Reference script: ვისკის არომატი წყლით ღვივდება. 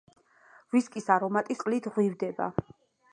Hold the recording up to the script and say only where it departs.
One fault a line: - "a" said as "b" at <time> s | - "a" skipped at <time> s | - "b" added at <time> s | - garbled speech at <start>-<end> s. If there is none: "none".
none